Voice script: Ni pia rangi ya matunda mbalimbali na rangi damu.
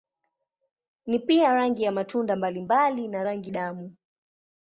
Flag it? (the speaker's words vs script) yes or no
no